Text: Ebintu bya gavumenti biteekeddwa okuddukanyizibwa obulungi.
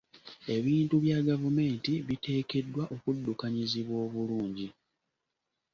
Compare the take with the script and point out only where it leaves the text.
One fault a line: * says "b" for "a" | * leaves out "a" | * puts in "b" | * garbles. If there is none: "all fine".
all fine